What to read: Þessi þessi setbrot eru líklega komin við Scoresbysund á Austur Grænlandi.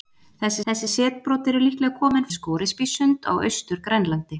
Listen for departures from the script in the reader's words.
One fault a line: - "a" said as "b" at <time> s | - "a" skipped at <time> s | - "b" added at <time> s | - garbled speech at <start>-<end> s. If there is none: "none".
none